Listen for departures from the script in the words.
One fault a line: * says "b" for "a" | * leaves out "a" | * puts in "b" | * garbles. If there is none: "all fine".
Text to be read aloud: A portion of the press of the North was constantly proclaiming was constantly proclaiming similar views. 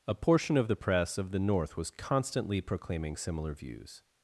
* leaves out "was constantly proclaiming"